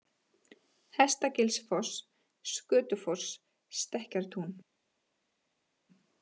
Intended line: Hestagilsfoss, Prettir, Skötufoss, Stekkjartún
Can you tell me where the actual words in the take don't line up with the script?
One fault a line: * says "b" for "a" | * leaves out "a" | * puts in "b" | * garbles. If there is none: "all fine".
* leaves out "Prettir"